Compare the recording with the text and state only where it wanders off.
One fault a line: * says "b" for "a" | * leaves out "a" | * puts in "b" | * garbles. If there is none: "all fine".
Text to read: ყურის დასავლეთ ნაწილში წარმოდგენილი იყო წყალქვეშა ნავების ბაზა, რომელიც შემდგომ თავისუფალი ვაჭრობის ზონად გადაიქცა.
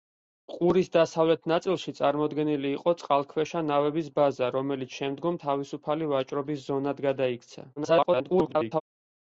* garbles